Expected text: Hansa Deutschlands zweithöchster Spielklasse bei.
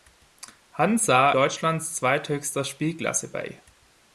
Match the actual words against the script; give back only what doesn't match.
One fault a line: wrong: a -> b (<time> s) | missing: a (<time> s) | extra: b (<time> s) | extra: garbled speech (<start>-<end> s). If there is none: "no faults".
no faults